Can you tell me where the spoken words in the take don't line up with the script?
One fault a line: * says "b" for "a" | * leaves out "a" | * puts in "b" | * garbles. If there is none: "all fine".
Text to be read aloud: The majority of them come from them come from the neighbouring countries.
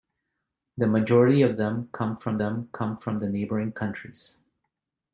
all fine